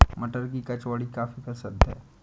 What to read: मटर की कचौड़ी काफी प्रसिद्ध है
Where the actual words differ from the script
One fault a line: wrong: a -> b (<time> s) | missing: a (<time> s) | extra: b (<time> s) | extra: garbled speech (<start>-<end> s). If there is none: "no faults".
no faults